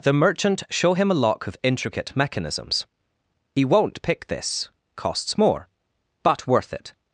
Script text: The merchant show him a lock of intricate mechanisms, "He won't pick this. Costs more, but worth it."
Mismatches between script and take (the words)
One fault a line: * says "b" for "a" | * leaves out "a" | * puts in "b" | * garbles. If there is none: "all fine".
all fine